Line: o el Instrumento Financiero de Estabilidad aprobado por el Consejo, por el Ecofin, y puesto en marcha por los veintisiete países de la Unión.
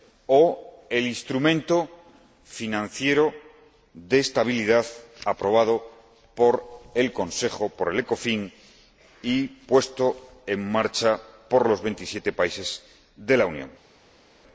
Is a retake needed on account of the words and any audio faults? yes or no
no